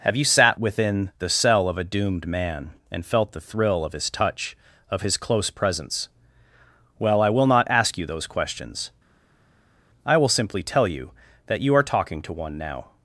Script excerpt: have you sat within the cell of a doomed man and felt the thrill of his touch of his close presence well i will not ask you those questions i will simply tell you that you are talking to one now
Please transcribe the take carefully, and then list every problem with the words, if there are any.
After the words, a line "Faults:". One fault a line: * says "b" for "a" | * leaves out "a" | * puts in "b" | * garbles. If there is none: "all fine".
have you sat within the cell of a doomed man and felt the thrill of his touch of his close presence well i will not ask you those questions i will simply tell you that you are talking to one now
Faults:
all fine